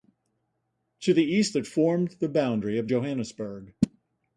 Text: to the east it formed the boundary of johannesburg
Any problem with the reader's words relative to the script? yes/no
no